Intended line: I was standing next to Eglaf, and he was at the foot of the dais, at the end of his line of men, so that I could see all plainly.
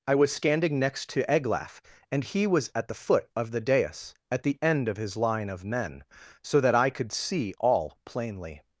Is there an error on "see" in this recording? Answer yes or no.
no